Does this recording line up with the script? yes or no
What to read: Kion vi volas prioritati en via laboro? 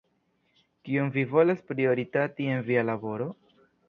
yes